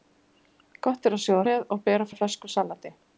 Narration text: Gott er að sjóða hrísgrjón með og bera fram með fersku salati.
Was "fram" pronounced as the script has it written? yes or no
no